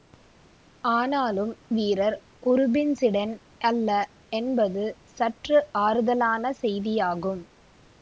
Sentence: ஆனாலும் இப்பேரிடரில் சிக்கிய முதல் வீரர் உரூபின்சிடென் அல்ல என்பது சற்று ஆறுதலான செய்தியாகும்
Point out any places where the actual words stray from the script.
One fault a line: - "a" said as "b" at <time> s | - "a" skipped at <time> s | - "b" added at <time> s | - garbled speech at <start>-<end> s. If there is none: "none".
- "இப்பேரிடரில் சிக்கிய முதல்" skipped at 1.5 s